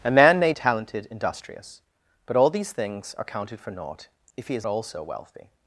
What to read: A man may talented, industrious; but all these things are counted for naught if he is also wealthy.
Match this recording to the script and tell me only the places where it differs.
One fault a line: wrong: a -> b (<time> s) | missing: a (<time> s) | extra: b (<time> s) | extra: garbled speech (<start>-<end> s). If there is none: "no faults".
no faults